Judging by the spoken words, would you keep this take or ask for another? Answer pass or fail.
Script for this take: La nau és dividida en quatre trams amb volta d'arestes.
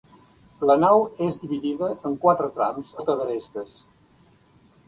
fail